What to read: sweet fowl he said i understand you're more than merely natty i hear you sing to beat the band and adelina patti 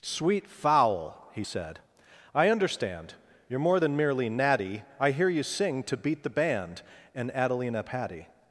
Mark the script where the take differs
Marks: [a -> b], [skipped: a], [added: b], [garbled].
sweet fowl he said i understand you're more than merely natty i hear you sing to beat the band and adelina patti